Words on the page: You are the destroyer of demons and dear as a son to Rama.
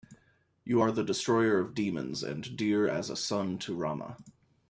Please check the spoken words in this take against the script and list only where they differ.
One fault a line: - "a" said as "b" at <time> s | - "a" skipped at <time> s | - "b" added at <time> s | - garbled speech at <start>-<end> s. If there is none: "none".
none